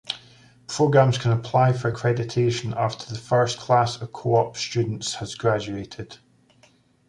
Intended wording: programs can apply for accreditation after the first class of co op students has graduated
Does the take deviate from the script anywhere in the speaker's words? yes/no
no